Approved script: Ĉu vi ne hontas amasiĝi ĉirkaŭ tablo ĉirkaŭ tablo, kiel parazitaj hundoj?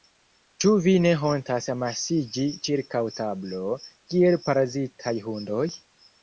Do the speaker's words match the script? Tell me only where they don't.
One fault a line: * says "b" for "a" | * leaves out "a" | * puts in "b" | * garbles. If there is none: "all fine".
* leaves out "ĉirkaŭ tablo"